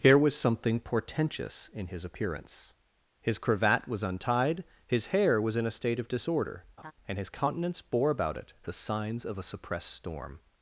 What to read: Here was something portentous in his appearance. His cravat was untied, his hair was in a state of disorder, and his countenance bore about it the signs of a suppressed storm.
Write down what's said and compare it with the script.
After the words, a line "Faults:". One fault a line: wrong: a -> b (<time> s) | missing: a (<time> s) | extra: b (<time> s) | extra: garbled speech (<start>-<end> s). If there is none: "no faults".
Here was something portentous in his appearance. His cravat was untied, his hair was in a state of disorder, and his countenance bore about it the signs of a suppressed storm.
Faults:
no faults